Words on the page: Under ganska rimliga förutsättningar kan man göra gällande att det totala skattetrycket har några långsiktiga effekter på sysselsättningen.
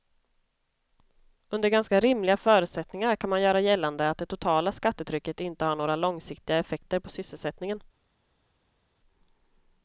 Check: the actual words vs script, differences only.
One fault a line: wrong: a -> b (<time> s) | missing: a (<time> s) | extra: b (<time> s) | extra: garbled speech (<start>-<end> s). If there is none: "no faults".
extra: inte (5.4 s)